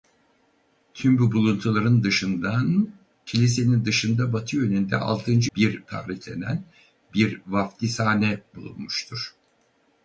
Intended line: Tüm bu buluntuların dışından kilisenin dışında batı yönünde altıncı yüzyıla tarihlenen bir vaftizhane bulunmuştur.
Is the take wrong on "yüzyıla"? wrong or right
wrong